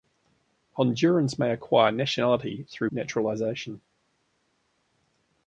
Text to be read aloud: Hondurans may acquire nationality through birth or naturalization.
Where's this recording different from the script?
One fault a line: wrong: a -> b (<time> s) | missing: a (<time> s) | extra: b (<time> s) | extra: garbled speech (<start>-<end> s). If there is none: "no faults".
missing: birth or (2.9 s)